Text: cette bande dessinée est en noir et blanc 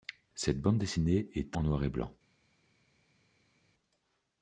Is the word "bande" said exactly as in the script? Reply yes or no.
yes